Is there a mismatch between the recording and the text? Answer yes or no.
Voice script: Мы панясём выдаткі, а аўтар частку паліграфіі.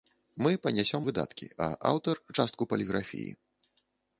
no